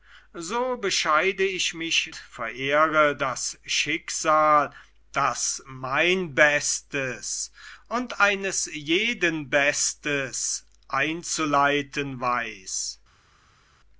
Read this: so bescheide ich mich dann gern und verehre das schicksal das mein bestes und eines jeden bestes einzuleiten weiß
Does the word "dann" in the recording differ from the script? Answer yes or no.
yes